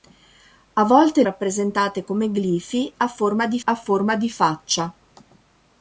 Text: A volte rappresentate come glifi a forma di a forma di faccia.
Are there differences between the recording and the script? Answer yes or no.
no